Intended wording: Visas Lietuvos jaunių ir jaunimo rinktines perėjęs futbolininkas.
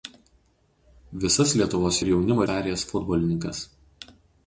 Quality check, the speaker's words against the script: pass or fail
fail